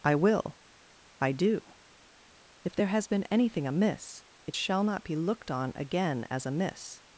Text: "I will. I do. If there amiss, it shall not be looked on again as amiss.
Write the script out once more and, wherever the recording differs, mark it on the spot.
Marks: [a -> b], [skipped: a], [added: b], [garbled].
"I will. I do. If there [added: has been anything] amiss, it shall not be looked on again as amiss.